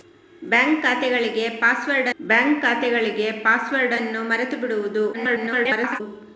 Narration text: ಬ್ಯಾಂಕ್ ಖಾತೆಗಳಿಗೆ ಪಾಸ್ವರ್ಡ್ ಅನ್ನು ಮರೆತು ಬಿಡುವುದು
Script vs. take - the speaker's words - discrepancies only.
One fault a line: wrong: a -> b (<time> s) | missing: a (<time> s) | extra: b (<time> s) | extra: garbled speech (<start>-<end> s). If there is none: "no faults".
extra: ಬ್ಯಾಂಕ್ ಖಾತೆಗಳಿಗೆ ಪಾಸ್ವರ್ಡ್ (2.2 s)
extra: garbled speech (5.1-6.0 s)